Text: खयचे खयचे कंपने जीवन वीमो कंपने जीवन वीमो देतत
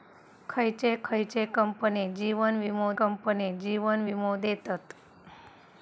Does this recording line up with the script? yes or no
yes